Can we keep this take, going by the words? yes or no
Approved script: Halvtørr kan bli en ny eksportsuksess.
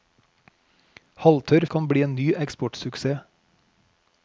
yes